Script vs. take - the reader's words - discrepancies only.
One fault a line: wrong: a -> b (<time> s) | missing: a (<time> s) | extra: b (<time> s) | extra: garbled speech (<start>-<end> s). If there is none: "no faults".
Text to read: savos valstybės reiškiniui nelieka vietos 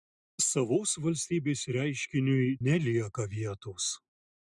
no faults